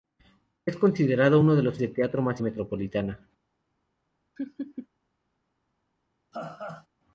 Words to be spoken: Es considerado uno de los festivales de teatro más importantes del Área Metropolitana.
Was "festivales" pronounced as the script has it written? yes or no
no